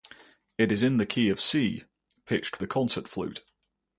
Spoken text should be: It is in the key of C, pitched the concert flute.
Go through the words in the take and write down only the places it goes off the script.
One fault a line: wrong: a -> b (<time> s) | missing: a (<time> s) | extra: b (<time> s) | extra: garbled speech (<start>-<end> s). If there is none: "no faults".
no faults